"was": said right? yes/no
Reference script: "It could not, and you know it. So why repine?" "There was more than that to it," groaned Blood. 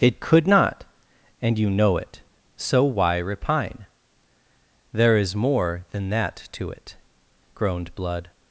no